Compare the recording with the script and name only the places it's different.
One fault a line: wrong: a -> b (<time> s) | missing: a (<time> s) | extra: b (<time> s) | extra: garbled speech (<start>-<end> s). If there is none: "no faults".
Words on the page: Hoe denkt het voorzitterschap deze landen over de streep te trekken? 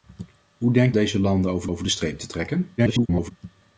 missing: het voorzitterschap (0.9 s)
extra: over (1.7 s)
extra: garbled speech (2.8-3.3 s)